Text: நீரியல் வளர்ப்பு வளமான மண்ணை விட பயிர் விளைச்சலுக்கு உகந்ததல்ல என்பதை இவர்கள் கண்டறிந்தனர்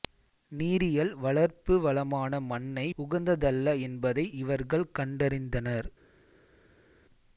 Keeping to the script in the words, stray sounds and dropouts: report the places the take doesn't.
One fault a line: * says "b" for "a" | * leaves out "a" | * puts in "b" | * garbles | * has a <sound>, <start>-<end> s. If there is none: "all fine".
* leaves out "விட பயிர் விளைச்சலுக்கு"